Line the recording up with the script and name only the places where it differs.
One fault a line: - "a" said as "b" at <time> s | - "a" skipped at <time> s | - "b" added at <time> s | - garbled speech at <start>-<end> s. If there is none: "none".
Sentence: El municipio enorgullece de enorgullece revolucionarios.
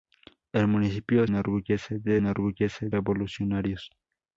none